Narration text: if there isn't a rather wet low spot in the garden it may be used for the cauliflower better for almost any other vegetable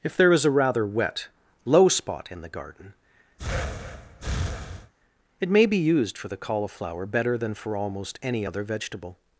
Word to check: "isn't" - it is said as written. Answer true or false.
false